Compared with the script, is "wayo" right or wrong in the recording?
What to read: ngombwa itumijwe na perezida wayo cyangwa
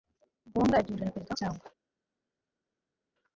wrong